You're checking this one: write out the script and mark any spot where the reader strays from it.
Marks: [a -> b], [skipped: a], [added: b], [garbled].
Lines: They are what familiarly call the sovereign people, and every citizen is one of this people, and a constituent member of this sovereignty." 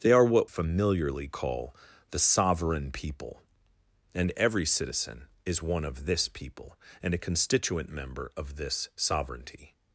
They are what familiarly call the sovereign people, and every citizen is one of this people, and a constituent member of this sovereignty."